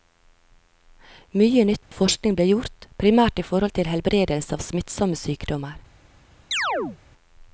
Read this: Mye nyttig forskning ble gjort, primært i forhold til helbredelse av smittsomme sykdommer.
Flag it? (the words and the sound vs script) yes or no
yes